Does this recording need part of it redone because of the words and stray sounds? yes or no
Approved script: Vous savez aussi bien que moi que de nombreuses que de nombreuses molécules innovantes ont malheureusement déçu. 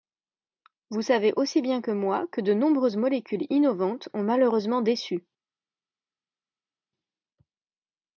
yes